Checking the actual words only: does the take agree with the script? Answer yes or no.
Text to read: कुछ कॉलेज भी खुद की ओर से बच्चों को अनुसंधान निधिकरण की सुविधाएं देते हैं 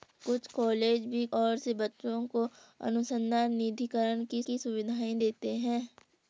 no